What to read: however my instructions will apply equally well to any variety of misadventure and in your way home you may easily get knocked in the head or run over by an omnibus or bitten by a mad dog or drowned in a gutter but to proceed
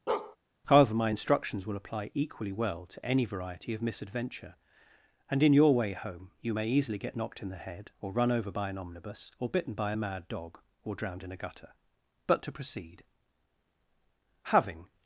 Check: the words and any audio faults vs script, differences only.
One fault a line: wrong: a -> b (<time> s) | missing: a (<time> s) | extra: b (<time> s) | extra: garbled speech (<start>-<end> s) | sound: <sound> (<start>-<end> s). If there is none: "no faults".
sound: bark (0.1-0.4 s)
extra: having (14.4 s)